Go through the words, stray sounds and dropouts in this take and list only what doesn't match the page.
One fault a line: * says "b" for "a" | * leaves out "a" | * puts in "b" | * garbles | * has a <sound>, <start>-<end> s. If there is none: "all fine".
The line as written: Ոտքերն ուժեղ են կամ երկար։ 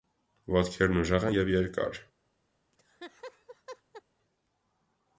* says "և" for "կամ"
* has a laugh, 2.7-4.0 s